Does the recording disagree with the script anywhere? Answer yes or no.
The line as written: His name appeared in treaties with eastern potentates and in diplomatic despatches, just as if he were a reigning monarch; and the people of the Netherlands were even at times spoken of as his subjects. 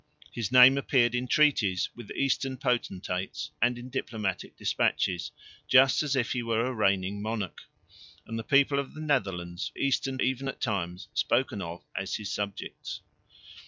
yes